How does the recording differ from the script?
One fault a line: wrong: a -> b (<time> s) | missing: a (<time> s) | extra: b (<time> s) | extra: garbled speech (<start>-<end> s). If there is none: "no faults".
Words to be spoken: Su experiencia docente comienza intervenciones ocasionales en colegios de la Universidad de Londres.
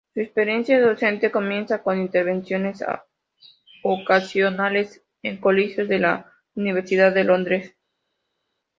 extra: con (1.8 s)